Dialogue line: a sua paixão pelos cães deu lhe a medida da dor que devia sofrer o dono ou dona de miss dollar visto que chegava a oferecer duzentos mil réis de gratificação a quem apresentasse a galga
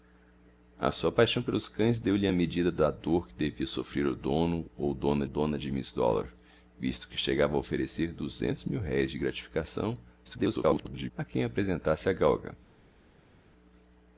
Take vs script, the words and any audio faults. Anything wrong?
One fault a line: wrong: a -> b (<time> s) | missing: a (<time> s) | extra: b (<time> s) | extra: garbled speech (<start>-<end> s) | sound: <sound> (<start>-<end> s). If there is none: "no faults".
extra: dona (5.3 s)
extra: garbled speech (10.2-11.1 s)